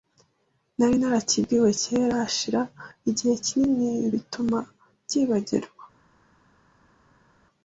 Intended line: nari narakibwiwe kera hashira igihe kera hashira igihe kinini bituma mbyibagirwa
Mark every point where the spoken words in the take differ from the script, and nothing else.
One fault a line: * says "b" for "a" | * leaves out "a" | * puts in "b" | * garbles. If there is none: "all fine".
* leaves out "kera hashira igihe"